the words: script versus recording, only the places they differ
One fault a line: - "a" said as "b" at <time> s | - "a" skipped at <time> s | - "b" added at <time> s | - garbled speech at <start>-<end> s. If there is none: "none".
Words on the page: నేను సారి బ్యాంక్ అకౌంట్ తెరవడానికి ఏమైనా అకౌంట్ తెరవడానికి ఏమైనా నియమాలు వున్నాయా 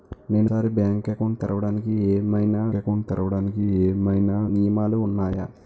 none